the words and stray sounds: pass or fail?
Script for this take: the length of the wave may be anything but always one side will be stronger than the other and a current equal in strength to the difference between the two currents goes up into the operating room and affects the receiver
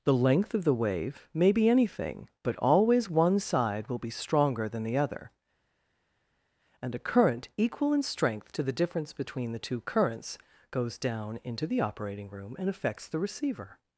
fail